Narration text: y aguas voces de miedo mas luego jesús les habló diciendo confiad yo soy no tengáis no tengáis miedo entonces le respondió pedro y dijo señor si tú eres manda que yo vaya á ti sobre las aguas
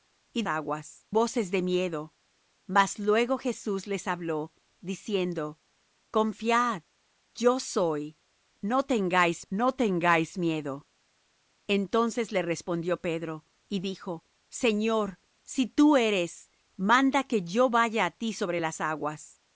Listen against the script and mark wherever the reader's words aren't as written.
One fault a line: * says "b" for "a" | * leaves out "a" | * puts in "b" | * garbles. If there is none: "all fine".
all fine